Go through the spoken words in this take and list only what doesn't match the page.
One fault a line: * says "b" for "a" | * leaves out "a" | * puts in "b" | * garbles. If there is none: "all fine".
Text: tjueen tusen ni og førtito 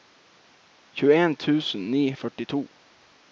all fine